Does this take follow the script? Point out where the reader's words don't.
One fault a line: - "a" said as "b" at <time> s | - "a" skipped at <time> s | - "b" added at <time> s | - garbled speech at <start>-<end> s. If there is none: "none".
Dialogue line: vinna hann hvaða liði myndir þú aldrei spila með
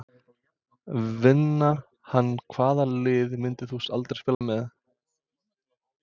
none